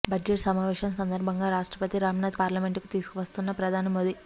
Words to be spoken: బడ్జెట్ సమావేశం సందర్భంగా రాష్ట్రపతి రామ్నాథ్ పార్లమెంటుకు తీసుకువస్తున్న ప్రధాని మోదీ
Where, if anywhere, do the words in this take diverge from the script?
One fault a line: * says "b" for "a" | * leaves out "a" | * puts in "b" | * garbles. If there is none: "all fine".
all fine